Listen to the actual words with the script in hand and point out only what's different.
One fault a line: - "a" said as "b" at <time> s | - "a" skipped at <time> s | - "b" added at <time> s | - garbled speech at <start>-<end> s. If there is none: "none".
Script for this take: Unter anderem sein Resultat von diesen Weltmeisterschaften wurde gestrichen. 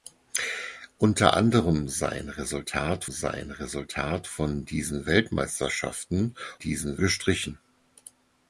- "sein Resultat" added at 3.1 s
- "wurde" said as "diesen" at 6.6 s